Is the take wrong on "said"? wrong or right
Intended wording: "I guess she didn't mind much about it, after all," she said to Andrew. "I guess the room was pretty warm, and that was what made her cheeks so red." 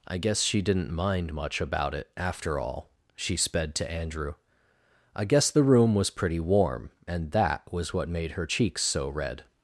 wrong